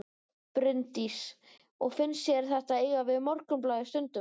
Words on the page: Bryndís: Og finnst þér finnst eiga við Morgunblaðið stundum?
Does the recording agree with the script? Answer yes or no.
no